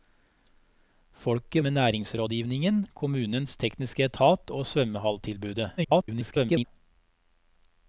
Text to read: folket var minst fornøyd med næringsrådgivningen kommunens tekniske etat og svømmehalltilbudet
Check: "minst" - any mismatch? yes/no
yes